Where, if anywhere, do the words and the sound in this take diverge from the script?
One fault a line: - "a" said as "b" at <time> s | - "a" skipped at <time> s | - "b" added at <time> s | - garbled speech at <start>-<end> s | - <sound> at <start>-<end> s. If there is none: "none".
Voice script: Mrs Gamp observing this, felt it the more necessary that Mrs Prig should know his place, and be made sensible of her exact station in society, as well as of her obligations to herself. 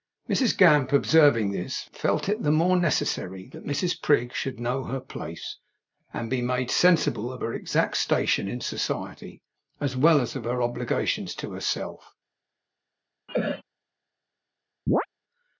- "his" said as "her" at 4.8 s
- cough at 13.3-13.6 s
- chirp at 14.9-15.1 s